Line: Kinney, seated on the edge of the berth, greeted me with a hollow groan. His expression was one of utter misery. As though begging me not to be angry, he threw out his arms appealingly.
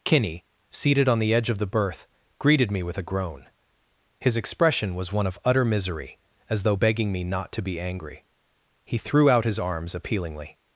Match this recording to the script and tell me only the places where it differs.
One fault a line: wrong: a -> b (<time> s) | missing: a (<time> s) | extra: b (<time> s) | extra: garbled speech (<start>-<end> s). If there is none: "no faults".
missing: hollow (3.0 s)